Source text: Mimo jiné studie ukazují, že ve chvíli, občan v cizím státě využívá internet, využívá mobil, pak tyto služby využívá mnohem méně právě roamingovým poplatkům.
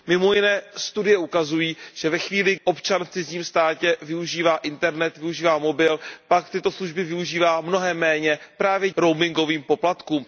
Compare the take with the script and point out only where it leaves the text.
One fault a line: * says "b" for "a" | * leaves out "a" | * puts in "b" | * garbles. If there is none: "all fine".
all fine